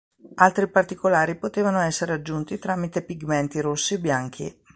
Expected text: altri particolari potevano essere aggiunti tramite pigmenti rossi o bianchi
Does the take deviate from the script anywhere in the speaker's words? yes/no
no